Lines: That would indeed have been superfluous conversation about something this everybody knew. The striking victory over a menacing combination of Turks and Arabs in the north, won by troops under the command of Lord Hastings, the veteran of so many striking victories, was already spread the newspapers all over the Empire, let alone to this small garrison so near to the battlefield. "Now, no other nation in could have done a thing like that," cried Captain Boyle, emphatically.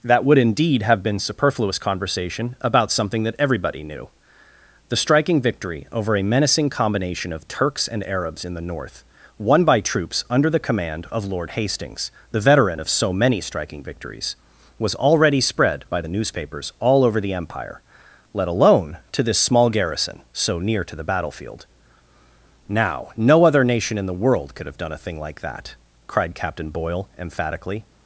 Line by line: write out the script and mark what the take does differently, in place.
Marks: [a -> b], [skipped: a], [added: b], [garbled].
That would indeed have been superfluous conversation about something [this -> that] everybody knew. The striking victory over a menacing combination of Turks and Arabs in the north, won by troops under the command of Lord Hastings, the veteran of so many striking victories, was already spread [added: by] the newspapers all over the Empire, let alone to this small garrison so near to the battlefield. "Now, no other nation in [added: the world] could have done a thing like that," cried Captain Boyle, emphatically.